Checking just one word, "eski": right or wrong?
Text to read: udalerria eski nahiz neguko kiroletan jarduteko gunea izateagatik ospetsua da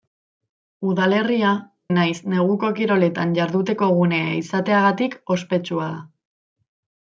wrong